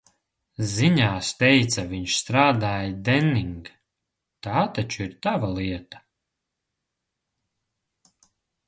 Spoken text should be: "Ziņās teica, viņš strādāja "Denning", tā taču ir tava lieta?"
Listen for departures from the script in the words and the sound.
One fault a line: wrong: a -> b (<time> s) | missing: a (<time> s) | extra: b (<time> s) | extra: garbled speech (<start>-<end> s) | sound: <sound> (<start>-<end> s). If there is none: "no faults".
no faults